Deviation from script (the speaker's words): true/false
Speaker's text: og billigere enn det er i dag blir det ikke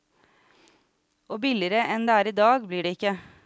false